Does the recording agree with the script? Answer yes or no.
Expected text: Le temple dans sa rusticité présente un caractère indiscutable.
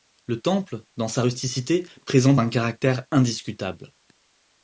yes